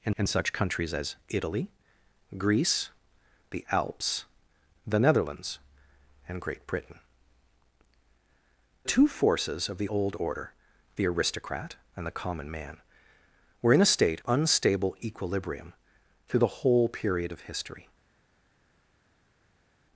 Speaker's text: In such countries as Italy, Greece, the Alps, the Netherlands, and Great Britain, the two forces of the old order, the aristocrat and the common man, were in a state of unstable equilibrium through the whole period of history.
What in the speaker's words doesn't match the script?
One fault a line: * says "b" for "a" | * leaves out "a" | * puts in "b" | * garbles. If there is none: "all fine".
* puts in "in"
* leaves out "the"
* leaves out "of"